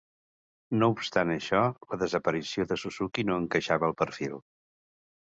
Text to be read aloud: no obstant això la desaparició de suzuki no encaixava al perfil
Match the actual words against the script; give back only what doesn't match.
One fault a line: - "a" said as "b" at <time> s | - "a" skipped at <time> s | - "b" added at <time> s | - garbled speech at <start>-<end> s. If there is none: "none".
none